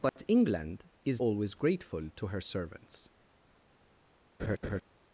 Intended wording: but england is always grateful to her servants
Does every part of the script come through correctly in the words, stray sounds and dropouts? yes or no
no